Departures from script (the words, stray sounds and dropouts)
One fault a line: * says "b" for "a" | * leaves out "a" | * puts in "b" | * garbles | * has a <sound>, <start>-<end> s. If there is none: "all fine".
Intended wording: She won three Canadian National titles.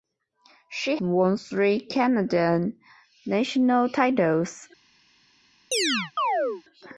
* has a chirp, 5.7-6.6 s